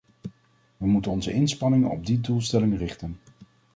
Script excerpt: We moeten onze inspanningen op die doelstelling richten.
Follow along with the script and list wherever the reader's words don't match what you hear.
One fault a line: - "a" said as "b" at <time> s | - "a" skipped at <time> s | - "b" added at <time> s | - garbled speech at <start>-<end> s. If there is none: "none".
none